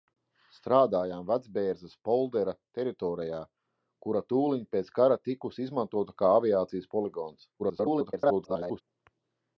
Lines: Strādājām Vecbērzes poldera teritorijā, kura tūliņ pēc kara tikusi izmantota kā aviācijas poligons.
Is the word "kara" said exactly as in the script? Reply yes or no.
yes